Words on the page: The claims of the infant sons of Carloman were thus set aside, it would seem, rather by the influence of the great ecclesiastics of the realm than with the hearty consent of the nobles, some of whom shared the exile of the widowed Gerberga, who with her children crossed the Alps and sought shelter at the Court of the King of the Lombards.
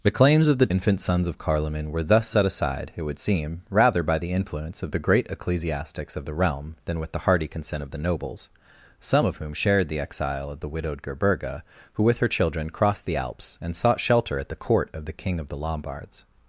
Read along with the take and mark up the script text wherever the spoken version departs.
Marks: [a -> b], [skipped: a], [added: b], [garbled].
The claims of the infant sons of Carloman were thus set aside, it would seem, rather by the influence of the great ecclesiastics of the realm than with the hearty consent of the nobles, some of whom shared the exile of the widowed Gerberga, who with her children crossed the Alps and sought shelter at the Court of the King of the Lombards.